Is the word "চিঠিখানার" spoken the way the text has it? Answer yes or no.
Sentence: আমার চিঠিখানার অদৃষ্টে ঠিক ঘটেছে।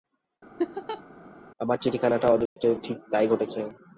yes